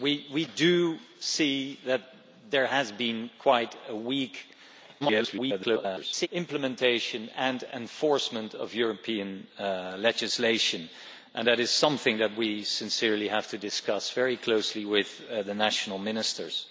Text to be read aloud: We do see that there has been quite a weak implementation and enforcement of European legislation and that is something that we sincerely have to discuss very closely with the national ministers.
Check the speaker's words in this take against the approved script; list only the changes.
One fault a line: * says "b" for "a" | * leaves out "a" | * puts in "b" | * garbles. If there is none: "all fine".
* garbles